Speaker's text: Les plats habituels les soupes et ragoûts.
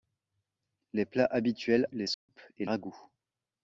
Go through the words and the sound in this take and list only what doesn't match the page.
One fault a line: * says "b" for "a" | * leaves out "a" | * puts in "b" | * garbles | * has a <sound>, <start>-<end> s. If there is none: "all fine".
* has a dropout, 2.1-2.3 s